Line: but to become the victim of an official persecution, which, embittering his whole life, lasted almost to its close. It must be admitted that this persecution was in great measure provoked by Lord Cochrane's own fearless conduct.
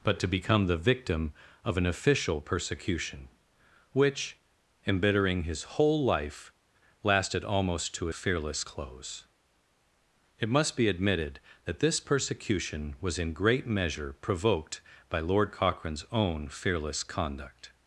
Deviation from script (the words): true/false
true